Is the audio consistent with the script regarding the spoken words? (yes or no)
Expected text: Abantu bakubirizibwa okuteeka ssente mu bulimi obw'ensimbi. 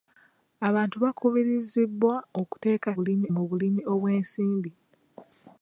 no